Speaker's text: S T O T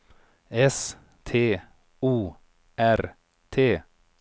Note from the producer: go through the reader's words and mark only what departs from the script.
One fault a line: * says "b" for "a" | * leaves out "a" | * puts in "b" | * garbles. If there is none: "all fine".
* puts in "R"